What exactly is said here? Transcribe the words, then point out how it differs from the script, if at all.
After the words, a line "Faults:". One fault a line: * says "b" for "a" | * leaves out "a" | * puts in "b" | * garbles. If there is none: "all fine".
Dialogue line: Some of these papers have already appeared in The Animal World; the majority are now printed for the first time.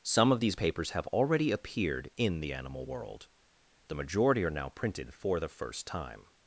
Some of these papers have already appeared in The Animal World; the majority are now printed for the first time.
Faults:
all fine